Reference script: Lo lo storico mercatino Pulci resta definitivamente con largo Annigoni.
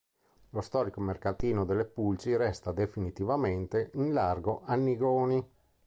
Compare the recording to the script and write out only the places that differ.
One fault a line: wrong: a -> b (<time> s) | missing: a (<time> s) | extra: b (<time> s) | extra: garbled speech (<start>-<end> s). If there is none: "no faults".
missing: lo (0.6 s)
extra: delle (1.6 s)
wrong: con -> in (3.9 s)